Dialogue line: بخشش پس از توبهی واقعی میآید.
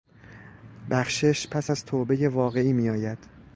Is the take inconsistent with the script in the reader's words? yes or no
no